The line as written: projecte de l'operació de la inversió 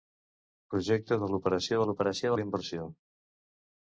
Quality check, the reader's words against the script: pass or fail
fail